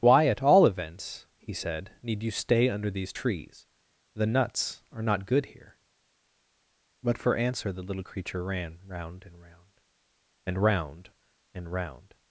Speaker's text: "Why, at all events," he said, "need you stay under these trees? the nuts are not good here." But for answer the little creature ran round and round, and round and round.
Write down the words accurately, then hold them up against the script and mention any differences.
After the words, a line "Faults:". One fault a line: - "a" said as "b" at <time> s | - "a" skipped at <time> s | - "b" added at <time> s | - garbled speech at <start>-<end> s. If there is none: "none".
"Why, at all events," he said, "need you stay under these trees? the nuts are not good here." But for answer the little creature ran round and round, and round and round.
Faults:
none